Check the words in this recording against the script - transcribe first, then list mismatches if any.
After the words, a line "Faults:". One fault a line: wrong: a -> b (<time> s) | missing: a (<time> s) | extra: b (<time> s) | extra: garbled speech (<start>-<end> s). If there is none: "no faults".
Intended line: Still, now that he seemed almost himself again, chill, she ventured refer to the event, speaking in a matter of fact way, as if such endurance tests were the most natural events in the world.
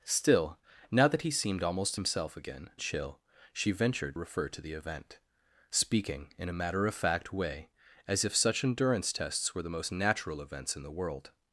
Still, now that he seemed almost himself again, chill, she ventured refer to the event, speaking in a matter of fact way, as if such endurance tests were the most natural events in the world.
Faults:
no faults